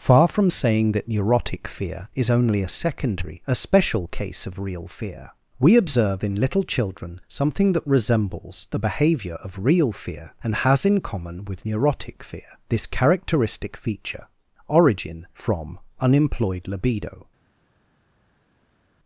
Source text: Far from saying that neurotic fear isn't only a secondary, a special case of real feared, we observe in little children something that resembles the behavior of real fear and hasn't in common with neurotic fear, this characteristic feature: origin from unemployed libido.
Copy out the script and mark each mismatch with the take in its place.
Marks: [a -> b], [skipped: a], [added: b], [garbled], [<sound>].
Far from saying that neurotic fear [isn't -> is] only a secondary, a special case of real [feared, -> fear] we observe in little children something that resembles the behavior of real fear and [hasn't -> has] in common with neurotic fear, this characteristic feature: origin from unemployed libido.